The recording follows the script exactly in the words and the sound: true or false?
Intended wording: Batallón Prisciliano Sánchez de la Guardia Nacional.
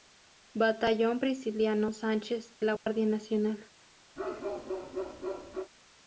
false